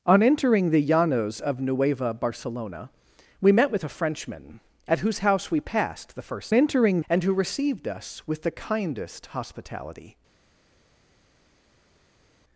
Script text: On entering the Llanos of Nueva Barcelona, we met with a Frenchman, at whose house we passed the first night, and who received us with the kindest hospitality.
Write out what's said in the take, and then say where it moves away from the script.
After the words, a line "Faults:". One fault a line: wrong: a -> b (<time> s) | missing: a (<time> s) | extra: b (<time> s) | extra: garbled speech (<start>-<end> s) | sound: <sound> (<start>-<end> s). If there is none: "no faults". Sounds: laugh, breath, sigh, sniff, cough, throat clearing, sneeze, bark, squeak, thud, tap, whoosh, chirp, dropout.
On entering the Llanos of Nueva Barcelona, we met with a Frenchman, at whose house we passed the first entering, and who received us with the kindest hospitality.
Faults:
wrong: night -> entering (6.5 s)